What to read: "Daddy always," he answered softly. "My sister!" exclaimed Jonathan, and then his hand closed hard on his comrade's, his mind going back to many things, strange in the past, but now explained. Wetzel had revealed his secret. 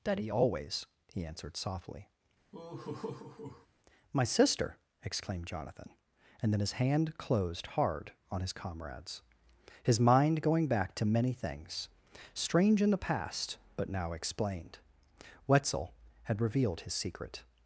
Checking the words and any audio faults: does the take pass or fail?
fail